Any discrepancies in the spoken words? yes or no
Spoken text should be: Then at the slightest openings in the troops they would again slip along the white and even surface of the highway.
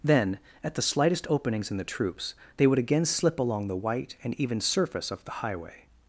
no